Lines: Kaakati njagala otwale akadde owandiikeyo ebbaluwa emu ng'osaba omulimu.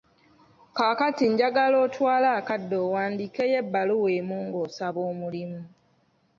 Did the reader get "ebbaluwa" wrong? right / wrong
right